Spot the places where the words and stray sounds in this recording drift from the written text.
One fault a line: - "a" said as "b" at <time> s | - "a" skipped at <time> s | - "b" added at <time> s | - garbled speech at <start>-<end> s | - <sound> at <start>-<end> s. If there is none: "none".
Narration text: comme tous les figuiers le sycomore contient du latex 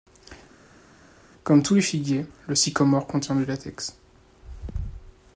none